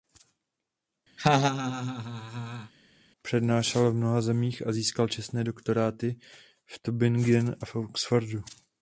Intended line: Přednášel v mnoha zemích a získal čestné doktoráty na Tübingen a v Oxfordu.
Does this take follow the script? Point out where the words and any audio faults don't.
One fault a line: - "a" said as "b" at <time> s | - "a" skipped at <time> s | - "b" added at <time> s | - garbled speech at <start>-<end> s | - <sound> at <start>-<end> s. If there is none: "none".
- laugh at 1.2-2.7 s
- "na" said as "v" at 6.7 s